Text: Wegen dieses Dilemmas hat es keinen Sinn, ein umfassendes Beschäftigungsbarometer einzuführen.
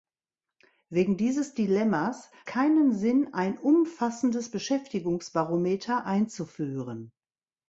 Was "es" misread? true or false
true